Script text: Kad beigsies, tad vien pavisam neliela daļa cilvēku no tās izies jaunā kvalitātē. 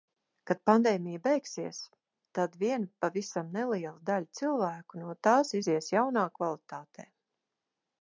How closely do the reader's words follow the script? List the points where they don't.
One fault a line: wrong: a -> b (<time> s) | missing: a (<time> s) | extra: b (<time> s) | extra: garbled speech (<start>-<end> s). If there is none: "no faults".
extra: pandēmija (0.7 s)